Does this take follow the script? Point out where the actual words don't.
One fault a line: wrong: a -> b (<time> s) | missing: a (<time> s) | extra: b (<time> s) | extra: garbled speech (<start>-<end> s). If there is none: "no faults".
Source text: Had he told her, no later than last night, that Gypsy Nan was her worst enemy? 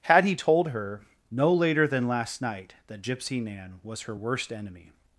no faults